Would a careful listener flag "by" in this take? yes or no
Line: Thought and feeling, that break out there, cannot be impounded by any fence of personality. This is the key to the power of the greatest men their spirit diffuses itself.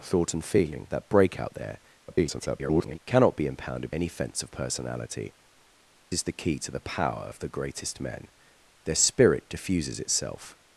yes